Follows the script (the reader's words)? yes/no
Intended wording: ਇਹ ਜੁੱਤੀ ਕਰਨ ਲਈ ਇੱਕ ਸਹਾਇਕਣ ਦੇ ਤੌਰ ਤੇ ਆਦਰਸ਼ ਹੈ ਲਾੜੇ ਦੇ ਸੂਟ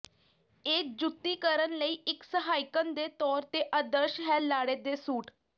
yes